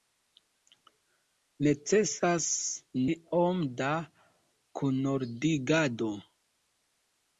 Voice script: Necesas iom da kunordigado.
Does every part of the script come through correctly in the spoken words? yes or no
yes